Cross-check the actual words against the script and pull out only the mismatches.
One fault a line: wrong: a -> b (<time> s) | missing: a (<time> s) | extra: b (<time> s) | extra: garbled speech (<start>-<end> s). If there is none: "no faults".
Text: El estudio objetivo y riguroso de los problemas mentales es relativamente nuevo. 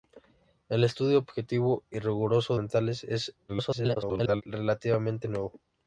missing: de los problemas (2.6 s)
extra: garbled speech (3.5-4.4 s)